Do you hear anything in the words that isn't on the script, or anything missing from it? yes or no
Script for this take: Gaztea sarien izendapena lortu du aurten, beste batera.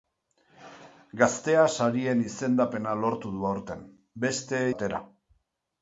no